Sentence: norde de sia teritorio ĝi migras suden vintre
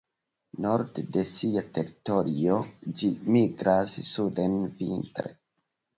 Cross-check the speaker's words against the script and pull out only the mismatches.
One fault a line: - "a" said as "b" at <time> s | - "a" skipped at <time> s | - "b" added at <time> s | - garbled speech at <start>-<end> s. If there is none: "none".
none